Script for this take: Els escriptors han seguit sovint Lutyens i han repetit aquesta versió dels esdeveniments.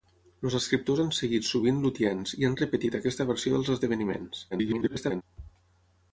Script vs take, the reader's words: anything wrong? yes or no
yes